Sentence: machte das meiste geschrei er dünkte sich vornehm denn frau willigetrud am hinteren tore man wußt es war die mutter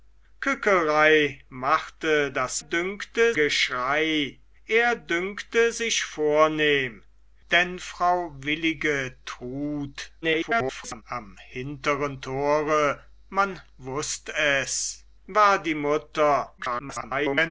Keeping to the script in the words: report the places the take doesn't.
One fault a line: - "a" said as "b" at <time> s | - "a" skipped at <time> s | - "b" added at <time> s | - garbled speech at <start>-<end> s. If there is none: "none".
- "meiste" said as "dünkte" at 2.6 s
- garbled speech at 10.2-11.0 s
- garbled speech at 16.6-17.5 s